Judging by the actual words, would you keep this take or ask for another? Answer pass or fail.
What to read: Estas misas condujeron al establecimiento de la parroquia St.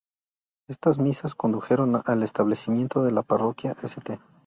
pass